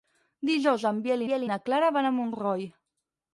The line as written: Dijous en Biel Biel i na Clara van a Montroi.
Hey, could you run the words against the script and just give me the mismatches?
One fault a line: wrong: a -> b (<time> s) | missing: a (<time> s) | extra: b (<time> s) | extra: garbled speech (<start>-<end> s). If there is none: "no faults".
no faults